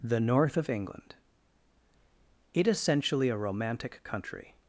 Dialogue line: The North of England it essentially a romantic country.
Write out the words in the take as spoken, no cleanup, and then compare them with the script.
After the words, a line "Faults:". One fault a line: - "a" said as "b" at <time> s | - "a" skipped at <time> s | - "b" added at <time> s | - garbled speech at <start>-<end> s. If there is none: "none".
The North of England it essentially a romantic country.
Faults:
none